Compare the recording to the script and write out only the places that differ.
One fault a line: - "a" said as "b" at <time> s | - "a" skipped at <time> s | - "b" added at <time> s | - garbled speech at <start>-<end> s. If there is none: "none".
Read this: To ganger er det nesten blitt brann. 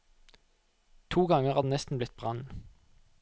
none